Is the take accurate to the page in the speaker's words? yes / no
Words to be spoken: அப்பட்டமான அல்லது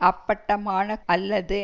yes